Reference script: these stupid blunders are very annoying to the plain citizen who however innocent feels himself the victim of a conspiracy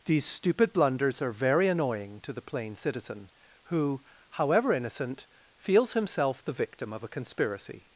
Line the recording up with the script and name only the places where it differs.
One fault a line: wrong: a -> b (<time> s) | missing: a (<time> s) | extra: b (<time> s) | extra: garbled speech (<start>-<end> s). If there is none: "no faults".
no faults